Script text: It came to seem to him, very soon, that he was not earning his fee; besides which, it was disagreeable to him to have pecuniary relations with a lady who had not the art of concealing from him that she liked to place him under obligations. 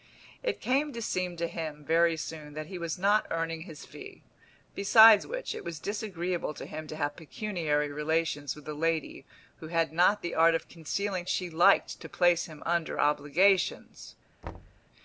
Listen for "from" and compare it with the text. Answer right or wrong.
wrong